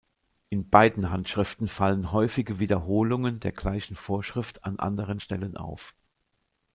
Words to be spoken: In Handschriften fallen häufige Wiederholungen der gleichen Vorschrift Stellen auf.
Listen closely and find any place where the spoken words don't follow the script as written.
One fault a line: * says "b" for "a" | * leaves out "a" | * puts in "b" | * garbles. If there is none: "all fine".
* puts in "beiden"
* puts in "an anderen"